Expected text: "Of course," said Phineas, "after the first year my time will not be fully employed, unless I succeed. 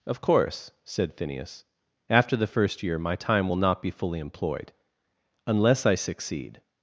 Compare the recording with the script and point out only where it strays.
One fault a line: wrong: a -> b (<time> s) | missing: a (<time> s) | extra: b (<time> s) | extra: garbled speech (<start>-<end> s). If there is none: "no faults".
no faults